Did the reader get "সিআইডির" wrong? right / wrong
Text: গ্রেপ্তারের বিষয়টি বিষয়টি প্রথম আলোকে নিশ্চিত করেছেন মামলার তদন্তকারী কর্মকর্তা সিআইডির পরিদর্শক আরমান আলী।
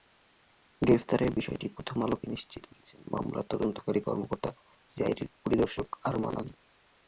right